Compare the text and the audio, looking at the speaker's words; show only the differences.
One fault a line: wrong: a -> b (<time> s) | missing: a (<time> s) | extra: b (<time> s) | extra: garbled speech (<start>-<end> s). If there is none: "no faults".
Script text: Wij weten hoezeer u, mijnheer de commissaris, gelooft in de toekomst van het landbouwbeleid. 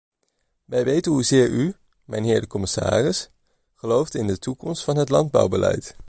no faults